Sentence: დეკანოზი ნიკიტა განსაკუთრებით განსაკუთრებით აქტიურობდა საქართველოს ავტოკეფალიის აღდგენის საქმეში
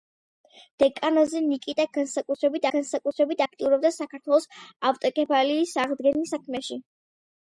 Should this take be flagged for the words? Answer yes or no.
no